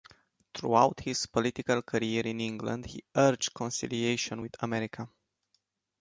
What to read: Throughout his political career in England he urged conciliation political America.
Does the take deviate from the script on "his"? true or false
false